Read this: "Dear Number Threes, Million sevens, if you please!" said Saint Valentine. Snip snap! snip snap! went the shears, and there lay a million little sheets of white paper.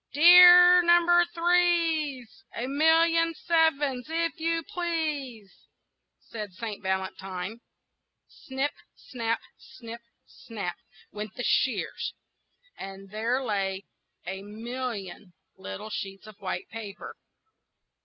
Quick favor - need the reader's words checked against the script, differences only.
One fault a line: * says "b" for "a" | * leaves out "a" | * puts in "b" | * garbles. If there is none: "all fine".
* puts in "A"